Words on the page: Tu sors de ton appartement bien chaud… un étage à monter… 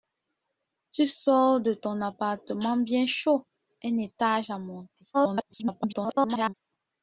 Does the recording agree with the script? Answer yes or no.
no